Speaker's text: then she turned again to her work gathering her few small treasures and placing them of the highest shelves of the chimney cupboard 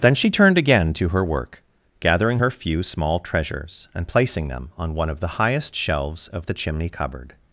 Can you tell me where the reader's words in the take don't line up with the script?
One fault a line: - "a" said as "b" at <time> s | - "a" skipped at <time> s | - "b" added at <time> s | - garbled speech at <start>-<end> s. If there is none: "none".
- "on one" added at 4.8 s